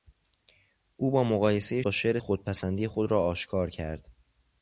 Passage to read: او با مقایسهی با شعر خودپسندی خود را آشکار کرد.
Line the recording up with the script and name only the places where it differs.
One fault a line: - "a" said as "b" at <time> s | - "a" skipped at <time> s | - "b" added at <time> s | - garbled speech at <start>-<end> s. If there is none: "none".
none